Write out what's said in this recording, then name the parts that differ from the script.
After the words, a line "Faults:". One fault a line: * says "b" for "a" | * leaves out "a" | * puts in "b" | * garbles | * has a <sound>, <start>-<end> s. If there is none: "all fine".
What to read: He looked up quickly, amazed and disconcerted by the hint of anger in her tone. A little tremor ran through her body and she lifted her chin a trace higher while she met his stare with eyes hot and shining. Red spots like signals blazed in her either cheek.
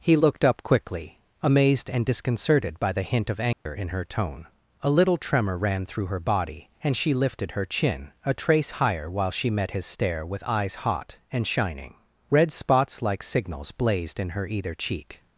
He looked up quickly, amazed and disconcerted by the hint of anger in her tone. A little tremor ran through her body and she lifted her chin a trace higher while she met his stare with eyes hot and shining. Red spots like signals blazed in her either cheek.
Faults:
* has a dropout, 3.5-3.7 s